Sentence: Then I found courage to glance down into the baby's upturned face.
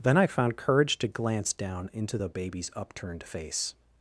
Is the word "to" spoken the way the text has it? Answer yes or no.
yes